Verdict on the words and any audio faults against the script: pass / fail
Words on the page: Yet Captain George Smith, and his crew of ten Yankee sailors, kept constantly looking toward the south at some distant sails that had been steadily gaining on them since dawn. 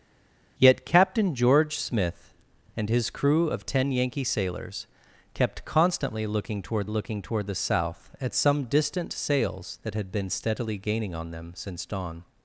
fail